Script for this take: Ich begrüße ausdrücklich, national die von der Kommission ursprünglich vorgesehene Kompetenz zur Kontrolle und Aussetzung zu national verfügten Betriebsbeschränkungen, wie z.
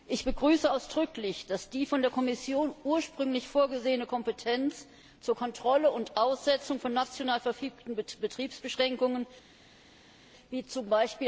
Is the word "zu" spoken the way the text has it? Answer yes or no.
no